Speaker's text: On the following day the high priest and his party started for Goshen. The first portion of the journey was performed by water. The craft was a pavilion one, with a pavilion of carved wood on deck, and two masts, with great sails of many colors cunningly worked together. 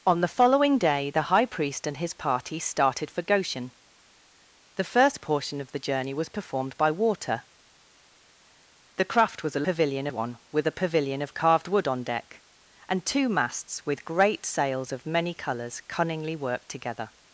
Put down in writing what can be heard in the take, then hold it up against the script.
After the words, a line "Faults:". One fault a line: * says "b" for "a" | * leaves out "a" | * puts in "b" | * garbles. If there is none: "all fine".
On the following day the high priest and his party started for Goshen. The first portion of the journey was performed by water. The craft was a pavilion one, with a pavilion of carved wood on deck, and two masts, with great sails of many colors cunningly worked together.
Faults:
all fine